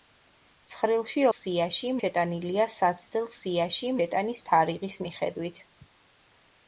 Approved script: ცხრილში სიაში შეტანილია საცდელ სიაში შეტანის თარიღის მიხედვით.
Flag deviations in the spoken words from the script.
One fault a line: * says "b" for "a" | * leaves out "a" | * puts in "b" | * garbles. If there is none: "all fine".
all fine